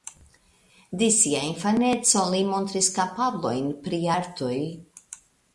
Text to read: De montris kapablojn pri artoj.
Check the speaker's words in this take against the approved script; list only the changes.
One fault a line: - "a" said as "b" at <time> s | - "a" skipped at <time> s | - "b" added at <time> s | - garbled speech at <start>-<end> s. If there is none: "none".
- "sia infaneco li" added at 1.2 s